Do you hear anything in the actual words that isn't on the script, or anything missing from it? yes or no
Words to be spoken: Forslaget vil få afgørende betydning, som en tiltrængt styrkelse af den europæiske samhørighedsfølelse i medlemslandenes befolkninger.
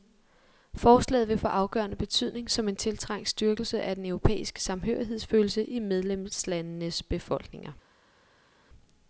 no